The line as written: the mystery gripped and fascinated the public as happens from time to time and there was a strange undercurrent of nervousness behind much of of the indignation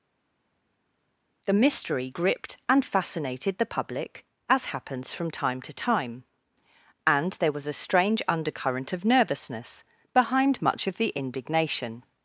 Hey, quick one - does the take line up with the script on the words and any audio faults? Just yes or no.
no